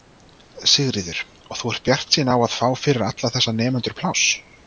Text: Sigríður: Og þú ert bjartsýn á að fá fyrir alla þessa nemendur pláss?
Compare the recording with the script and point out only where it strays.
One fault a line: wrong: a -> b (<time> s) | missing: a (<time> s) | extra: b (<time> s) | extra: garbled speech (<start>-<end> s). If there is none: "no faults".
no faults